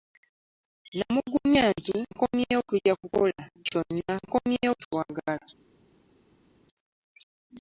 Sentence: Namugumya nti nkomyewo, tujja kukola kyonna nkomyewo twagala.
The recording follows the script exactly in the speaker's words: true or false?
true